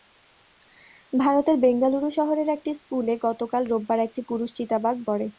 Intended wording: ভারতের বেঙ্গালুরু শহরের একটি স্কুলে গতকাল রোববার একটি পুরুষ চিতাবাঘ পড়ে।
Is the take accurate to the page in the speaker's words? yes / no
yes